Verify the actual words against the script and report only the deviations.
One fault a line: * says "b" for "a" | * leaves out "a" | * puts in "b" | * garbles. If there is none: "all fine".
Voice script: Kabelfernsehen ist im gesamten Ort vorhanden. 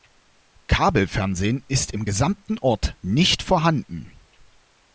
* puts in "nicht"